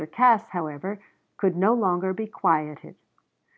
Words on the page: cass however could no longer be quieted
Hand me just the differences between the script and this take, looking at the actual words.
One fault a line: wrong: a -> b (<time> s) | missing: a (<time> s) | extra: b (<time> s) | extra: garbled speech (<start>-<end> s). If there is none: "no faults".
no faults